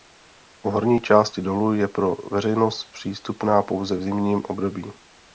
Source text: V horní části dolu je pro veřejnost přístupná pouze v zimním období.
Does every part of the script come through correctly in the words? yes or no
yes